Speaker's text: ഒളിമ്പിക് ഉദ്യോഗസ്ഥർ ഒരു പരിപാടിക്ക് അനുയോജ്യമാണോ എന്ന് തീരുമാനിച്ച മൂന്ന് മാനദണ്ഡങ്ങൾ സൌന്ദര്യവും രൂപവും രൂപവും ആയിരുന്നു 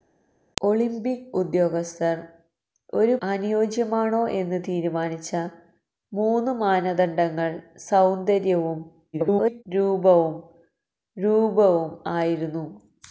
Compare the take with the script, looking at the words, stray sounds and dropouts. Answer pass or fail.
fail